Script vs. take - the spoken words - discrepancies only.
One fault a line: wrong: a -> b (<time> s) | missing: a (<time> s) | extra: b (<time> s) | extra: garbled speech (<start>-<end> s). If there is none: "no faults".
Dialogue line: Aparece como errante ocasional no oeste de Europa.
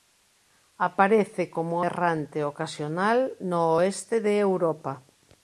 no faults